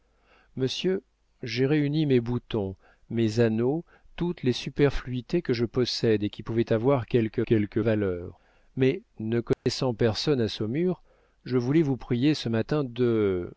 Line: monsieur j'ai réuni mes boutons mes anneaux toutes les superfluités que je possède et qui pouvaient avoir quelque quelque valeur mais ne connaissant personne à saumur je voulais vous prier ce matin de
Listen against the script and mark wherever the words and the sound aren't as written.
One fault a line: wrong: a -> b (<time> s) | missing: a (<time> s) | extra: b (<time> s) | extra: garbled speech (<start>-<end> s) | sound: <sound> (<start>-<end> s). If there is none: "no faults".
sound: dropout (9.5-9.7 s)